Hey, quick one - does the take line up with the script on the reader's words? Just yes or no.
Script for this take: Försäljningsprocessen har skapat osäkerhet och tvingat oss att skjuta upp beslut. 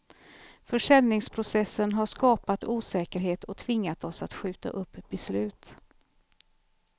yes